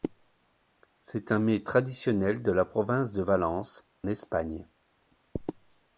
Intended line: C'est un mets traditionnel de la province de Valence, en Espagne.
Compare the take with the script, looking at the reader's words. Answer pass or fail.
fail